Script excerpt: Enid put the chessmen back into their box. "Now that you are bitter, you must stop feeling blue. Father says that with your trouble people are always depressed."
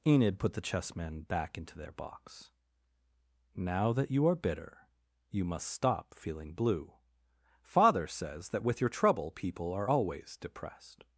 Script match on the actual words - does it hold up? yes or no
yes